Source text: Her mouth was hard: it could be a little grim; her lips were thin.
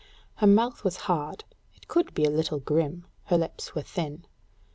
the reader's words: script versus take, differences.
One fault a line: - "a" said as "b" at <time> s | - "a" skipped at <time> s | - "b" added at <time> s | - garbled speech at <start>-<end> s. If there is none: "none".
none